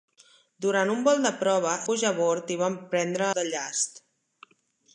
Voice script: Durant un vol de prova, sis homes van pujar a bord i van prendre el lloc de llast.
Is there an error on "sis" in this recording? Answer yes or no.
yes